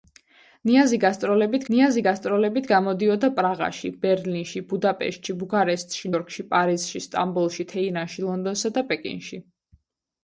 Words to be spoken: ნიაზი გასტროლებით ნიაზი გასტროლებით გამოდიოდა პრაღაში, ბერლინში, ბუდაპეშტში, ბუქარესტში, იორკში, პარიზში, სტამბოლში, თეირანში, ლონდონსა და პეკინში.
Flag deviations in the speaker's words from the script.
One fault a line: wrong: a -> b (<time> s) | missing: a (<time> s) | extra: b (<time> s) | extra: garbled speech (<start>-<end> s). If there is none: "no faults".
no faults